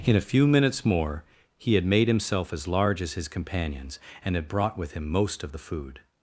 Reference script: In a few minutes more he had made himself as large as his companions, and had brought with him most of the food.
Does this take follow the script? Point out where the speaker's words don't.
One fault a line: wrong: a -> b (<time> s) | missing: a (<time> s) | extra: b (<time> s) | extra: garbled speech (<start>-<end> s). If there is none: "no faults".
no faults